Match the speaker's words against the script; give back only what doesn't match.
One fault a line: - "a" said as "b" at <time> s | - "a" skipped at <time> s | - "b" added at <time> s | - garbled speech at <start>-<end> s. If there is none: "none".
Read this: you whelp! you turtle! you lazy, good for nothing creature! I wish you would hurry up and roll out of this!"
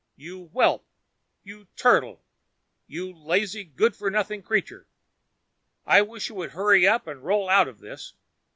none